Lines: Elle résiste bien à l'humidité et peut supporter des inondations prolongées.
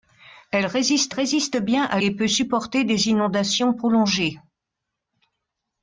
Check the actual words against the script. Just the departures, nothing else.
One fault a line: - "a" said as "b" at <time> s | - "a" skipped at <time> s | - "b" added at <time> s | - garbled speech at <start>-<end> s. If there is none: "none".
- "résiste" added at 1.1 s
- "l'humidité" skipped at 2.0 s